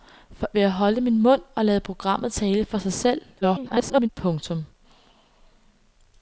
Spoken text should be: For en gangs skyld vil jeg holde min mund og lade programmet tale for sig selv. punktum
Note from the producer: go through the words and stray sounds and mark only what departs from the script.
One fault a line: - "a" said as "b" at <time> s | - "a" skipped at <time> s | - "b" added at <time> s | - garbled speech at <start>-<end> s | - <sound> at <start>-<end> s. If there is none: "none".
- "en gangs skyld" skipped at 0.5 s
- garbled speech at 3.4-4.1 s